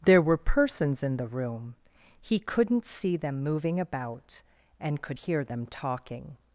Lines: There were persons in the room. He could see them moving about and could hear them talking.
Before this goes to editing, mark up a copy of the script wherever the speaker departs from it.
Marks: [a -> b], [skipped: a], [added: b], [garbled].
There were persons in the room. He [could -> couldn't] see them moving about and could hear them talking.